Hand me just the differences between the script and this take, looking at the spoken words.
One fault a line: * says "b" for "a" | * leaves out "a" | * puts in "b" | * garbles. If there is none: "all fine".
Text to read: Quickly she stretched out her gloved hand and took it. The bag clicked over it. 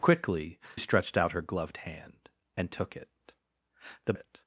* leaves out "she"
* leaves out "bag clicked over"